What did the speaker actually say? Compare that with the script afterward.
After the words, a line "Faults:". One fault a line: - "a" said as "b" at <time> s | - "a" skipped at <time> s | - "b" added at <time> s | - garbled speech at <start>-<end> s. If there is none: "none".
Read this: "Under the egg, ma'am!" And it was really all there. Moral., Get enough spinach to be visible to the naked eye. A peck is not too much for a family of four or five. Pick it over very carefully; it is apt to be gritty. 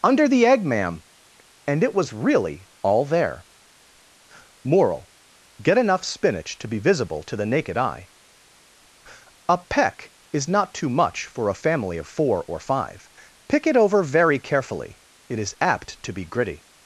"Under the egg, ma'am!" And it was really all there. Moral., Get enough spinach to be visible to the naked eye. A peck is not too much for a family of four or five. Pick it over very carefully; it is apt to be gritty.
Faults:
none